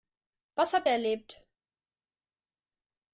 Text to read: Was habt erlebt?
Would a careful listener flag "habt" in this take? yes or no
no